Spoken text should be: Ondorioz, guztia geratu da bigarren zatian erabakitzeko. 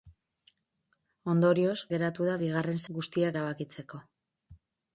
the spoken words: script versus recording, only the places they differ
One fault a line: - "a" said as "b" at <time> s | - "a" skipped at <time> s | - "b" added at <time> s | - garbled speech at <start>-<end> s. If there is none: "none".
- "guztia" skipped at 1.8 s
- "zatian" said as "guztia" at 2.9 s